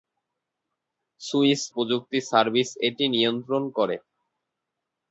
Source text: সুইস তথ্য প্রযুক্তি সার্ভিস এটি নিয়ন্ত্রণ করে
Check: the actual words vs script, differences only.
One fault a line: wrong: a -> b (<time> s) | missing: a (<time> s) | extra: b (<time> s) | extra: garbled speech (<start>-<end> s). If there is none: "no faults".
missing: তথ্য (1.6 s)